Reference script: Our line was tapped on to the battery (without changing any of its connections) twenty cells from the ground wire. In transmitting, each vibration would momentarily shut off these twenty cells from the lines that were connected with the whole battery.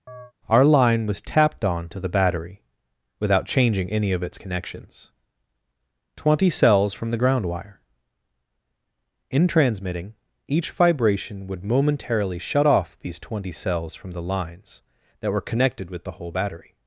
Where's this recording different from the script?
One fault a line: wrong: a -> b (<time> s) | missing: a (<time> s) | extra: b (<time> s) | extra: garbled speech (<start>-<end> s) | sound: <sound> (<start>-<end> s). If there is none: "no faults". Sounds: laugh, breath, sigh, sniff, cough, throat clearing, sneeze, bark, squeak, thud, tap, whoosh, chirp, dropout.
sound: chirp (0.1-0.3 s)